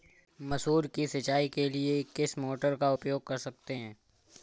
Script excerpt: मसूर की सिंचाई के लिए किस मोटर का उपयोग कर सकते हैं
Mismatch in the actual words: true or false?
false